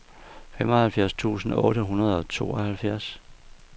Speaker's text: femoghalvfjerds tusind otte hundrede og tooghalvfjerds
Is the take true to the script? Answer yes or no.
yes